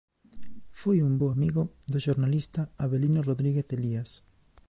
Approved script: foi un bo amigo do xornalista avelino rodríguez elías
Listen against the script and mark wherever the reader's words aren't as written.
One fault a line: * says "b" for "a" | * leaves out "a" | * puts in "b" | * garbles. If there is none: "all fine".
all fine